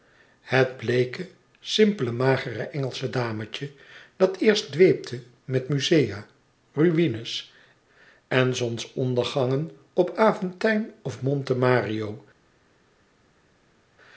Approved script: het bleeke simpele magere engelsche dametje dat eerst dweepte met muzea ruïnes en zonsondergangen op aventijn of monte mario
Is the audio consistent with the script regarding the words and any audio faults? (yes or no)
yes